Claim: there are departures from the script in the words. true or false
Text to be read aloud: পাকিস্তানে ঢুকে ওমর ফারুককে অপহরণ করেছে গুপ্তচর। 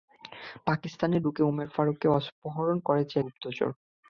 false